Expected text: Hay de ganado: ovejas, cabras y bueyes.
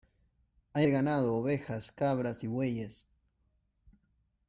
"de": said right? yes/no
yes